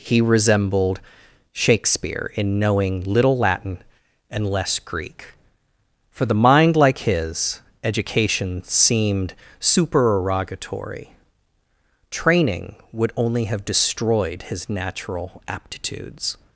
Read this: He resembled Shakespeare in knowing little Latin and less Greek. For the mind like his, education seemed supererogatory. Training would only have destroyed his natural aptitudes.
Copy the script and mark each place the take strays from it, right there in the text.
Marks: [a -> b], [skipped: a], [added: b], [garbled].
He resembled Shakespeare in knowing little Latin and less Greek. For the mind like his, education seemed supererogatory. Training would only have destroyed his natural aptitudes.